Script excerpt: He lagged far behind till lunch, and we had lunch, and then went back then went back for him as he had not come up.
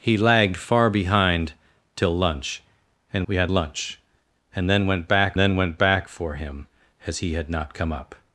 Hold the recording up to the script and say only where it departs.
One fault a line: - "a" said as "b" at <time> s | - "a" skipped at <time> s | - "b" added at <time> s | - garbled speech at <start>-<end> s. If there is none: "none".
none